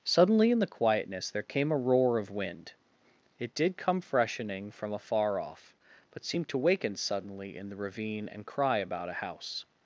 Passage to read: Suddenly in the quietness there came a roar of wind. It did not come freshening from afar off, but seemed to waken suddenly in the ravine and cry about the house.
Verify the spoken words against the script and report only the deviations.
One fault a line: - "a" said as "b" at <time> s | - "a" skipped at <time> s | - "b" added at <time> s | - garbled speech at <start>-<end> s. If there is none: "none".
- "not" skipped at 3.8 s
- "the" said as "a" at 9.1 s